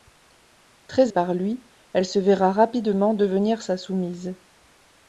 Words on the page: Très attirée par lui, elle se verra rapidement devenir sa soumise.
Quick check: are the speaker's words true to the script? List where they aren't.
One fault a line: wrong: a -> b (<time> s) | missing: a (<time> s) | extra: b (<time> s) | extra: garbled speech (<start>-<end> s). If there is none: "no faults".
missing: attirée (1.1 s)